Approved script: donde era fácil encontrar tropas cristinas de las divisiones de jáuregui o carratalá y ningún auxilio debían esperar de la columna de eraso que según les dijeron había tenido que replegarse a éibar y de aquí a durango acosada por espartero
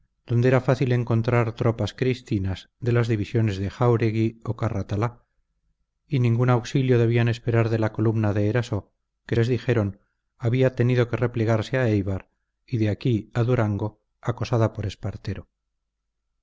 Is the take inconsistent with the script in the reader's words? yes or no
yes